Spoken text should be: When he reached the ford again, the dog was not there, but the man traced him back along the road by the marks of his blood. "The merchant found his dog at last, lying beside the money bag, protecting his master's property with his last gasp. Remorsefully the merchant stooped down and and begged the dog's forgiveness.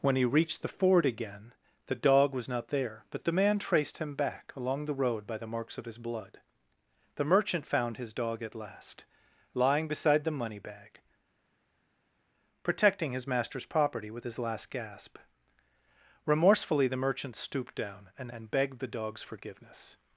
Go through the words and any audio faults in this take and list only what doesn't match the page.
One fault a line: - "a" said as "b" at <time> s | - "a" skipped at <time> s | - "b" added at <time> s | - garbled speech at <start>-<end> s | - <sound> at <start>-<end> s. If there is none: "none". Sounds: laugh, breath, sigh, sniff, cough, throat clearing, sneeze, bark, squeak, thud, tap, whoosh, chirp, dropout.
none